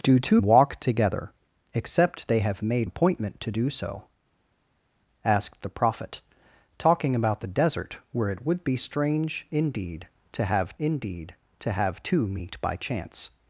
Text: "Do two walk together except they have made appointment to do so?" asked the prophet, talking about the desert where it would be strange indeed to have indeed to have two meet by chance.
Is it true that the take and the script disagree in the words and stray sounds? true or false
false